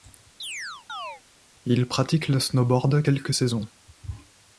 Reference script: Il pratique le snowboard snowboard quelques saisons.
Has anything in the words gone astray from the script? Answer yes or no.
yes